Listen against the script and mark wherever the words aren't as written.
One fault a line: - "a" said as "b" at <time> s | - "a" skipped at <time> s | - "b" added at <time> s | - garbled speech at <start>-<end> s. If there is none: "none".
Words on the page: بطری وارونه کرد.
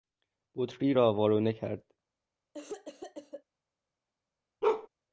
- "را" added at 0.9 s